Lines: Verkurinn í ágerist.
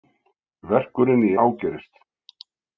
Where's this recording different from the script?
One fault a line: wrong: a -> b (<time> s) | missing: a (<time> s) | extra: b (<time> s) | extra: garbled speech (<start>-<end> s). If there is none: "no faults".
no faults